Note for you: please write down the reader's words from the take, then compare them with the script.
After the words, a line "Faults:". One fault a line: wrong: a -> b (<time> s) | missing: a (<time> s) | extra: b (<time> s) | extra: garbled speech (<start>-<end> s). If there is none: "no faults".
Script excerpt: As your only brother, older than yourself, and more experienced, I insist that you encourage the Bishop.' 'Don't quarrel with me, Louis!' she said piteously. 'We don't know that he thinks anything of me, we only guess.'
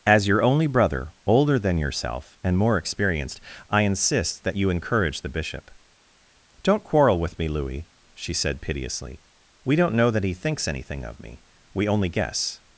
As your only brother, older than yourself, and more experienced, I insist that you encourage the Bishop.' 'Don't quarrel with me, Louis!' she said piteously. 'We don't know that he thinks anything of me, we only guess.'
Faults:
no faults